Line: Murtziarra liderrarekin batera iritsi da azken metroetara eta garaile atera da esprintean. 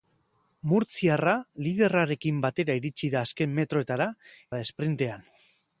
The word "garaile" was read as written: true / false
false